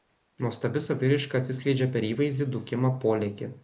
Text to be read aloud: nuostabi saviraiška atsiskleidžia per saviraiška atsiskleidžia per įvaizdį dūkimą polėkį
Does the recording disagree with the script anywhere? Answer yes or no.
yes